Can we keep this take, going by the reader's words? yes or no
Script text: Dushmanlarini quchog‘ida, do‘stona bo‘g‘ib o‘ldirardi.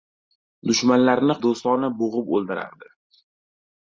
no